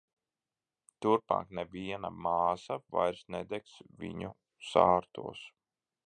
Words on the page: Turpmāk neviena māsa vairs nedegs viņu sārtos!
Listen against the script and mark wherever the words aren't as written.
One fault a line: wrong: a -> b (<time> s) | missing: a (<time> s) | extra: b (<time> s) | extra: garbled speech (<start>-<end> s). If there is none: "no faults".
no faults